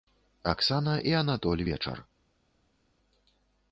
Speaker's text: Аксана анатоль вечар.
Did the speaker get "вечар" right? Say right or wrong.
right